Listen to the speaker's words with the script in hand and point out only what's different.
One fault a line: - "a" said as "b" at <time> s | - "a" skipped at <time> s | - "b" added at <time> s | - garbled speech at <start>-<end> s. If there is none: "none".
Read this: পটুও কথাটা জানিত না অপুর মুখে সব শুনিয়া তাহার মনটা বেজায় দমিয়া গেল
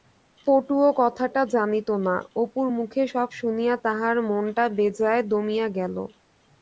none